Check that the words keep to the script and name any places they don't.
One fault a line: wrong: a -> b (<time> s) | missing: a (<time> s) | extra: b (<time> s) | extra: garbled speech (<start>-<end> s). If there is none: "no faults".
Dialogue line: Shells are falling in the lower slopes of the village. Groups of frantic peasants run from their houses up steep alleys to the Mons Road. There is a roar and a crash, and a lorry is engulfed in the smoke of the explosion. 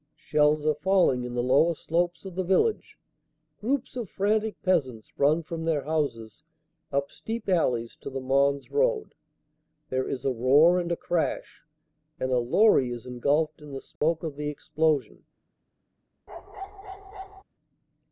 no faults